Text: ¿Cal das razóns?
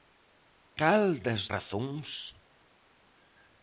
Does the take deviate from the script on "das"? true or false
false